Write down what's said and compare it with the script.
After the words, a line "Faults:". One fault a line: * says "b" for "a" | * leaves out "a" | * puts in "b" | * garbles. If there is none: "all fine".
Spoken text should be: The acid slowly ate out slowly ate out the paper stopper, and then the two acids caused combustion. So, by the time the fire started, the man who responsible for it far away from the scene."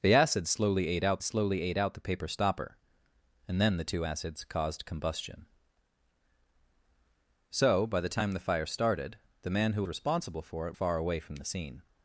The acid slowly ate out slowly ate out the paper stopper, and then the two acids caused combustion. So, by the time the fire started, the man who responsible for it far away from the scene."
Faults:
all fine